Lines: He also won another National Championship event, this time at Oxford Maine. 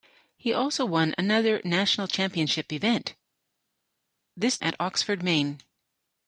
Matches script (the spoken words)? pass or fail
fail